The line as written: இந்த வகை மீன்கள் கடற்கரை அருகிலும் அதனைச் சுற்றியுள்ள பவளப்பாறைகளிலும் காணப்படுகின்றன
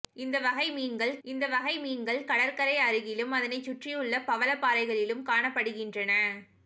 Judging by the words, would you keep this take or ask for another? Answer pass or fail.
fail